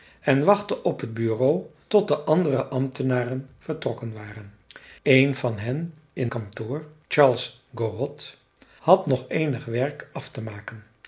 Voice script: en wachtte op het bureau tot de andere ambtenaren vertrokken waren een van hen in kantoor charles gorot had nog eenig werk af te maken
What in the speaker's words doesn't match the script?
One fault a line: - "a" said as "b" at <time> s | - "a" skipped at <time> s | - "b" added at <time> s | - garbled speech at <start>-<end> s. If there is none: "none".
none